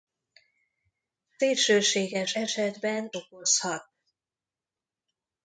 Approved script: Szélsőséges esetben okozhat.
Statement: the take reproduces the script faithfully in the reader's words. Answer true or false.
true